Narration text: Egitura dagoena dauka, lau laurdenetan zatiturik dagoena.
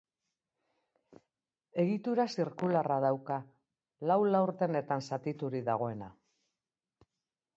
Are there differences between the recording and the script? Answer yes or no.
yes